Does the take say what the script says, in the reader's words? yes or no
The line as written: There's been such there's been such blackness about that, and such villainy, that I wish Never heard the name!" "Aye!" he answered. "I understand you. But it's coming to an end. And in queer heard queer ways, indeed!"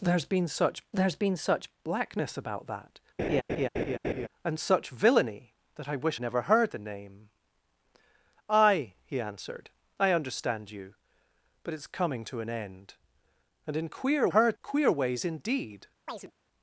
yes